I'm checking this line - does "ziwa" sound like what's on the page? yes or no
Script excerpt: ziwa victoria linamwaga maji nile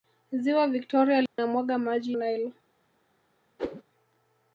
yes